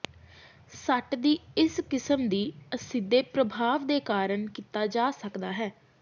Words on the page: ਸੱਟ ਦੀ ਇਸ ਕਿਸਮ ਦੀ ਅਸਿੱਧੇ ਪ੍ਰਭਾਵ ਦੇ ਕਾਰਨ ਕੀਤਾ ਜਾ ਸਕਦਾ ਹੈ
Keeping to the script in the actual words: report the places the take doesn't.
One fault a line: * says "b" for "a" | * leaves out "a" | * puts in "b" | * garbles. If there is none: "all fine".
all fine